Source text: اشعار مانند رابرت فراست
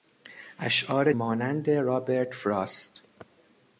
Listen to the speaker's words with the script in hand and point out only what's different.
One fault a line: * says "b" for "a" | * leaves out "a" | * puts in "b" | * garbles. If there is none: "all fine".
all fine